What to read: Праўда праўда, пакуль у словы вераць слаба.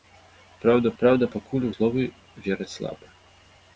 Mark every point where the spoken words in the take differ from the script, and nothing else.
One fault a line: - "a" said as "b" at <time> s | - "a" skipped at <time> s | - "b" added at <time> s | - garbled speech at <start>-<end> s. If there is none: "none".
none